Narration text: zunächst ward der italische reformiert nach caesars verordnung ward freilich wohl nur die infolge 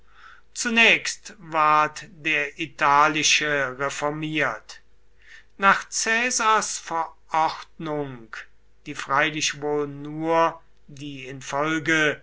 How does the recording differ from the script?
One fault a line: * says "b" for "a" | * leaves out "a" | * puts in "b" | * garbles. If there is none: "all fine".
* says "die" for "ward"